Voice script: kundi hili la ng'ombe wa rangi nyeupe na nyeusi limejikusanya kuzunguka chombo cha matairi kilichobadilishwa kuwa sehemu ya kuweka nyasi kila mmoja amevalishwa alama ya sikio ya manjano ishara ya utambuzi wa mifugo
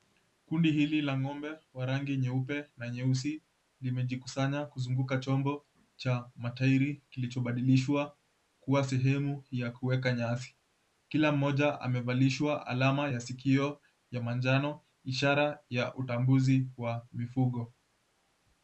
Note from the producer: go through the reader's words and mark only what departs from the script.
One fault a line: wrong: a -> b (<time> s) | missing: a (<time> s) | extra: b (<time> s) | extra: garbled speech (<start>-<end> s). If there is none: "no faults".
no faults